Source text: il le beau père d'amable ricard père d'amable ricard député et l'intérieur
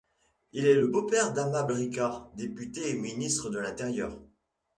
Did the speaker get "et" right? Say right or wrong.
wrong